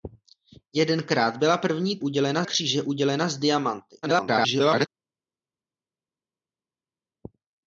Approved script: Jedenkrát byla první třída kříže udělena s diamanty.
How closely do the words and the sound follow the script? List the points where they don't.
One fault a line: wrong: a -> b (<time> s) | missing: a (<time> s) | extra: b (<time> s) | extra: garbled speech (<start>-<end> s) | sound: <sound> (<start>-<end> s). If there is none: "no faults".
wrong: třída -> udělena (2.0 s)
extra: garbled speech (4.0-4.9 s)